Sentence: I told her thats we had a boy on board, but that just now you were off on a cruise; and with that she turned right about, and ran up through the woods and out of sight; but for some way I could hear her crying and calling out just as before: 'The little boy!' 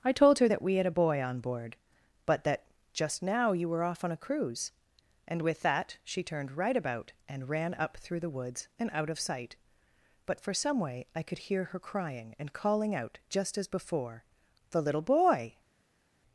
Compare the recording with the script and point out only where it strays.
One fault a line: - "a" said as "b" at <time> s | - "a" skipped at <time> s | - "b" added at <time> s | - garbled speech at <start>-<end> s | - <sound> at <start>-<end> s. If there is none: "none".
- "thats" said as "that" at 0.5 s